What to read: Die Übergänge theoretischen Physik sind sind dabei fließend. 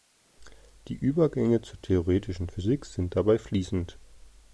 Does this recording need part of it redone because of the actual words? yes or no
yes